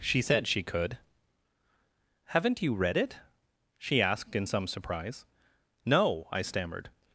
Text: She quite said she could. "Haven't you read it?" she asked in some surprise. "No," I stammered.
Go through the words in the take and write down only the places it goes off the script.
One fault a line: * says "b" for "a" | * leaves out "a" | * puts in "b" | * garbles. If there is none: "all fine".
* leaves out "quite"